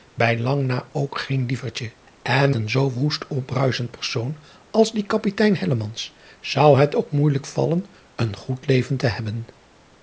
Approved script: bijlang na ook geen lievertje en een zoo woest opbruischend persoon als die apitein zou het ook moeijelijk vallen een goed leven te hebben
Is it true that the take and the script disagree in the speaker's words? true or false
false